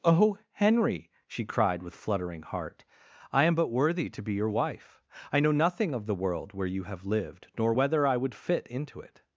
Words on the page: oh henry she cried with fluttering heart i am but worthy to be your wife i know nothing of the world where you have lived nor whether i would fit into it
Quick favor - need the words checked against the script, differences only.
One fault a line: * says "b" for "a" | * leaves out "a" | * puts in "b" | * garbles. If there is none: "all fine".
all fine